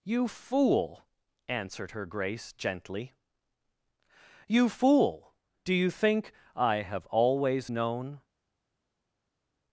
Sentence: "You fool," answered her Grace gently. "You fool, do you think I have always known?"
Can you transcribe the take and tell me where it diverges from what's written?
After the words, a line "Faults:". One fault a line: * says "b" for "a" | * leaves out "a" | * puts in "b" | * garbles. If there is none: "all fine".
"You fool," answered her Grace gently. "You fool, do you think I have always known?"
Faults:
all fine